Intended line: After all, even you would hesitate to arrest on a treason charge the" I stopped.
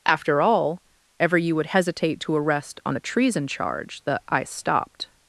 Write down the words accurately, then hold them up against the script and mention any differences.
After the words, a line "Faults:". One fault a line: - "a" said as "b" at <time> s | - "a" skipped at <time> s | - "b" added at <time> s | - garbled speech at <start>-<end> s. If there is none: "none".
After all, ever you would hesitate to arrest on a treason charge the" I stopped.
Faults:
- "even" said as "ever" at 1.2 s